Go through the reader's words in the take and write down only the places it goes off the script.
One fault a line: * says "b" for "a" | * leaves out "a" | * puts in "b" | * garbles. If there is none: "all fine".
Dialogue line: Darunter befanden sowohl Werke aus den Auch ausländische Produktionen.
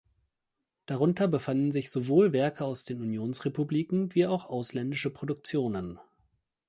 * puts in "sich"
* puts in "Unionsrepubliken wie"